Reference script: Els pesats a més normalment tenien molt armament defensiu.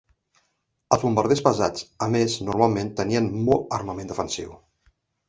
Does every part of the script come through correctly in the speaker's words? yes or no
no